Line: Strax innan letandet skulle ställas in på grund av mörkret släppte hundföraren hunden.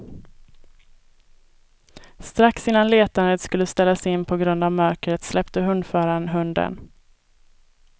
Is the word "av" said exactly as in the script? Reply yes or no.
yes